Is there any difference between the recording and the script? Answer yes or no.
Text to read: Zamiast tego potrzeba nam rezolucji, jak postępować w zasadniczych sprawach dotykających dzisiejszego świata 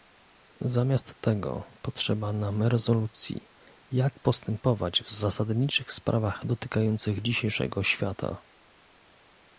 no